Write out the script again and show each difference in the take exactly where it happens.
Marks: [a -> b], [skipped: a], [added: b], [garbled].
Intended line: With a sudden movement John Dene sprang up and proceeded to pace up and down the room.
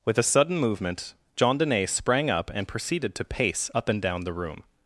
With a sudden movement John Dene sprang up and proceeded to pace up and down the room.